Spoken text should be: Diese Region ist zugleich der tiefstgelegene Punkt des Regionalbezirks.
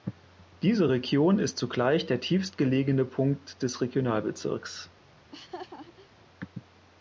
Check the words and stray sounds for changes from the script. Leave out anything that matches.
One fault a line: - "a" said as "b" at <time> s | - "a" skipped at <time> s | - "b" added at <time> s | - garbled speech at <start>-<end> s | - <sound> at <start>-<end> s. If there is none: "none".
- laugh at 5.2-6.3 s